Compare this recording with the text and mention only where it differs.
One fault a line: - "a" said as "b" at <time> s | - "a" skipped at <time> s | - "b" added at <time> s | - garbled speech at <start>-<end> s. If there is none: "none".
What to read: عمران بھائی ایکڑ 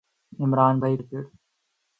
none